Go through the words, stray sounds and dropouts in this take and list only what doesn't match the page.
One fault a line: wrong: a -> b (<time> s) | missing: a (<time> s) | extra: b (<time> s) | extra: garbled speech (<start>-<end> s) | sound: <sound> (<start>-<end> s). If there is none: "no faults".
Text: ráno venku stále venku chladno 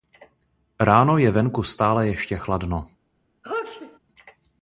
extra: je (1.2 s)
wrong: venku -> ještě (2.1 s)
sound: sneeze (3.4-4.0 s)